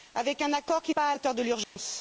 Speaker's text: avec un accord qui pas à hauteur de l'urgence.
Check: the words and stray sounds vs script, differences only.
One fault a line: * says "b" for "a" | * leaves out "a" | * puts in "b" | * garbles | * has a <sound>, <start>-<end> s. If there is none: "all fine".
* has a dropout, 1.6-1.8 s